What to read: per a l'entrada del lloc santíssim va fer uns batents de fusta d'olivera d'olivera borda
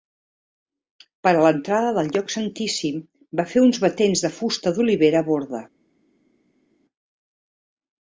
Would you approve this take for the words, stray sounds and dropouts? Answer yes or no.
no